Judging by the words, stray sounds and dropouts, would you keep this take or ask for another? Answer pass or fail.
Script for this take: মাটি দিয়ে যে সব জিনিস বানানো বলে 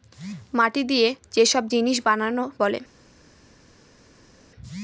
pass